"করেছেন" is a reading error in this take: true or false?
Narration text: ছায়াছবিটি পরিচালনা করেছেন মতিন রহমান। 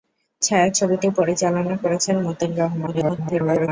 false